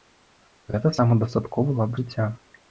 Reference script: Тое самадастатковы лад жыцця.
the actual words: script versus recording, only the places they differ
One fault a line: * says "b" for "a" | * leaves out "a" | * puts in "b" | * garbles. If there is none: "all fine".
* says "Гэта" for "Тое"